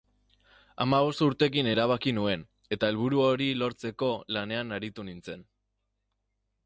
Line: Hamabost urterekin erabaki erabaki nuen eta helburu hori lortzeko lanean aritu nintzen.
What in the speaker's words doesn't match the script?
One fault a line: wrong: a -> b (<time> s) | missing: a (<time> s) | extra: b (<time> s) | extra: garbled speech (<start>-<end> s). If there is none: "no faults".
missing: erabaki (2.1 s)